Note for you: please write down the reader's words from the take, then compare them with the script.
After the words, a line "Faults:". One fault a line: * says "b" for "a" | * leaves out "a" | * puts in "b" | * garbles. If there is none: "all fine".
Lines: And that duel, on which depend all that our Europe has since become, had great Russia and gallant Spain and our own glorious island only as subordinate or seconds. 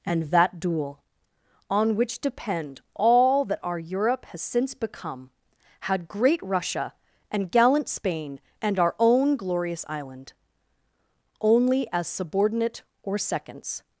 And that duel, on which depend all that our Europe has since become, had great Russia and gallant Spain and our own glorious island only as subordinate or seconds.
Faults:
all fine